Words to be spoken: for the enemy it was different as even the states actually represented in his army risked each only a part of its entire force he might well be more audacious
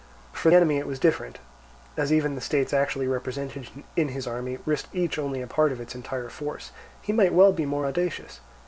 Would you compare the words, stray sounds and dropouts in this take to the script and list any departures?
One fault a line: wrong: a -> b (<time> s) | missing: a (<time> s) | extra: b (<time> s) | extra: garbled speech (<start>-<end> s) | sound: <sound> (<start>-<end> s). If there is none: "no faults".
missing: the (0.5 s)